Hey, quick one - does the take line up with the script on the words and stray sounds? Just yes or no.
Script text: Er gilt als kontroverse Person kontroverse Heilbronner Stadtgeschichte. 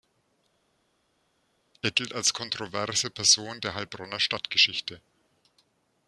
no